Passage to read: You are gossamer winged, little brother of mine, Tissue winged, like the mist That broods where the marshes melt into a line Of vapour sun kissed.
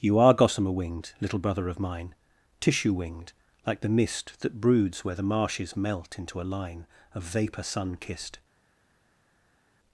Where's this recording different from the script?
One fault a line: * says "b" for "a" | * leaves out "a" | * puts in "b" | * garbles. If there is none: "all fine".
all fine